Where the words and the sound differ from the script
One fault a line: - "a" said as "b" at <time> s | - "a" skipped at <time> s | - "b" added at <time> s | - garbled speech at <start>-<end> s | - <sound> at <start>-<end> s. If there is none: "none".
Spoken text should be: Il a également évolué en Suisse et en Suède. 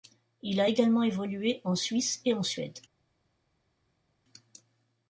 none